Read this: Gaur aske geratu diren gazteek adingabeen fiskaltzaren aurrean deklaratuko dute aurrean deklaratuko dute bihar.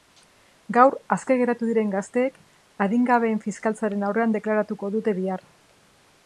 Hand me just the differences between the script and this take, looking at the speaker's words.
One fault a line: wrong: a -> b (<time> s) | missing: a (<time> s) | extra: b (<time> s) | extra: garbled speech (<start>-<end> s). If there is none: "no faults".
missing: aurrean deklaratuko dute (5.2 s)